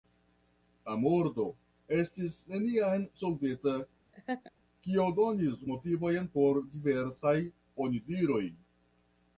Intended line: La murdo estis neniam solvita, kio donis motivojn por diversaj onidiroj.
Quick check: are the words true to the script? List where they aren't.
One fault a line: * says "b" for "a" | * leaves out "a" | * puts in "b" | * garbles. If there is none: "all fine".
all fine